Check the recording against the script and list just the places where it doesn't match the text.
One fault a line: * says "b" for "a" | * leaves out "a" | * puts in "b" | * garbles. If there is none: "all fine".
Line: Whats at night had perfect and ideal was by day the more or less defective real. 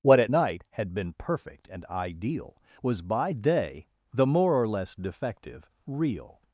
* says "What" for "Whats"
* puts in "been"